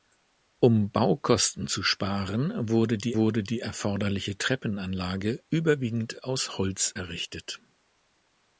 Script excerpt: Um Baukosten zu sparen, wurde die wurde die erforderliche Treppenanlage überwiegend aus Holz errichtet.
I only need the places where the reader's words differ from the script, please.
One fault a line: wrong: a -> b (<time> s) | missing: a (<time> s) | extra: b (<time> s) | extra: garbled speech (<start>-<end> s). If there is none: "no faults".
no faults